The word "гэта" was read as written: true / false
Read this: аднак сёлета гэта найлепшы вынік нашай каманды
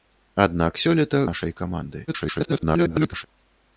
false